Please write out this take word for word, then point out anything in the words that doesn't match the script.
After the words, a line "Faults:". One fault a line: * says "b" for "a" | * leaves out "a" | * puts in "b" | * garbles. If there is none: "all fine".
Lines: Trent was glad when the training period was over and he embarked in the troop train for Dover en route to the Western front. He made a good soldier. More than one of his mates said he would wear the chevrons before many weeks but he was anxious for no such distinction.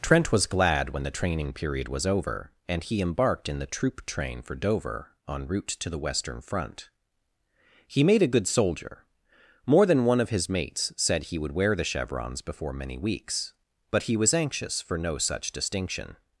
Trent was glad when the training period was over and he embarked in the troop train for Dover en route to the Western front. He made a good soldier. More than one of his mates said he would wear the chevrons before many weeks but he was anxious for no such distinction.
Faults:
all fine